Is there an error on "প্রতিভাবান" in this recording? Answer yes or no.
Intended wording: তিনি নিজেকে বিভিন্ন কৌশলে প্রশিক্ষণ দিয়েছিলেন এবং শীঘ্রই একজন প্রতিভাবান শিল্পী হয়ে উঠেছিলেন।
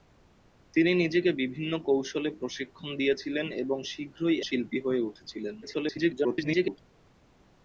yes